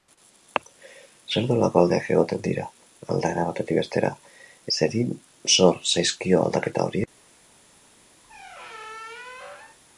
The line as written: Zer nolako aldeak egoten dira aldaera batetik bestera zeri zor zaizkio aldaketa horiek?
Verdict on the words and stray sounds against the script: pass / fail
fail